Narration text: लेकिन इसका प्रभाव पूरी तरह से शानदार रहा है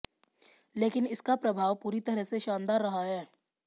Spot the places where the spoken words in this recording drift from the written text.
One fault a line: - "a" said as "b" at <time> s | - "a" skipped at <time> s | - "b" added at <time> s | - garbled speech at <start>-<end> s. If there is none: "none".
none